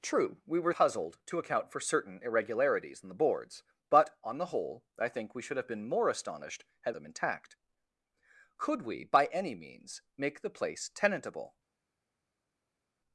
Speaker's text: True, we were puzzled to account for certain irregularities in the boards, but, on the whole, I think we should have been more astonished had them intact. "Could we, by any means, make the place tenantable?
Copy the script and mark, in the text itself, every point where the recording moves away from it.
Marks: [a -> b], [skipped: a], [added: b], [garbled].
True, we were puzzled to account for certain irregularities in the boards, but, on the whole, I think we should have been more astonished had them intact. "Could we, by any means, make the place tenantable?